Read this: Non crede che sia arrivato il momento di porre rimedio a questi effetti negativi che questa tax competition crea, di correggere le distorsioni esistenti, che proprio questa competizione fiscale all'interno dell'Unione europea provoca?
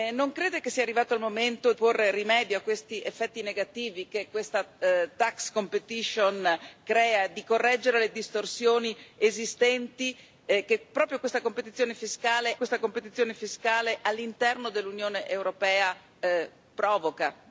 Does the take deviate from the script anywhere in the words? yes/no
yes